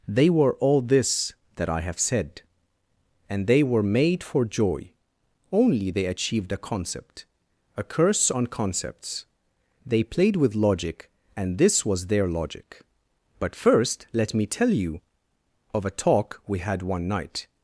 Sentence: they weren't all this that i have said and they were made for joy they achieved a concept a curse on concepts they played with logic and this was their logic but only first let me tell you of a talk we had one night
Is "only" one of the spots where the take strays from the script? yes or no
yes